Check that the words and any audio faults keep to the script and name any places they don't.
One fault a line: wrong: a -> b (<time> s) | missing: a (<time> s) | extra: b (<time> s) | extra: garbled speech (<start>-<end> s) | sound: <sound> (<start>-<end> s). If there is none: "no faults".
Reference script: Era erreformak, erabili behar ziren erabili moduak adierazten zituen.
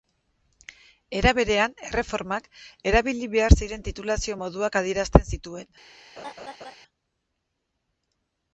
extra: berean (1.4 s)
wrong: erabili -> titulazio (3.9 s)
sound: laugh (6.2-6.8 s)